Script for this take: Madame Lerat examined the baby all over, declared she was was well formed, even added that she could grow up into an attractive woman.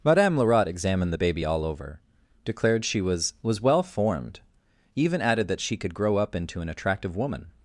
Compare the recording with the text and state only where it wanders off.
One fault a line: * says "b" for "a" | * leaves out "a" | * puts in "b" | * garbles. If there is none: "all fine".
all fine